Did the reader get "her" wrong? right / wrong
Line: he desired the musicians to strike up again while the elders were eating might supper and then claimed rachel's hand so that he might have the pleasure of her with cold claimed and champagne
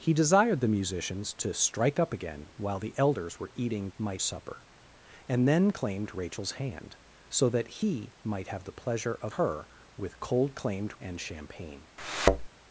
right